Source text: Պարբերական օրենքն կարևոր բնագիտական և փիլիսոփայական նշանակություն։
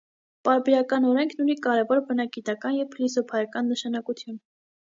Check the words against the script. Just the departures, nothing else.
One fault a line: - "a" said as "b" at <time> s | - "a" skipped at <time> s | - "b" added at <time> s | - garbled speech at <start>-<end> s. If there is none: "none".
- "ունի" added at 1.4 s